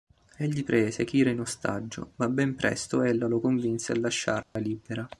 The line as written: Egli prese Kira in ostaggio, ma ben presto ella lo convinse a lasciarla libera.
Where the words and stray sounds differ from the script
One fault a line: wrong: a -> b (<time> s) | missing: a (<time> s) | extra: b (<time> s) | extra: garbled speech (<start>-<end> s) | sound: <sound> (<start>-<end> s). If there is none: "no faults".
sound: dropout (4.4-4.6 s)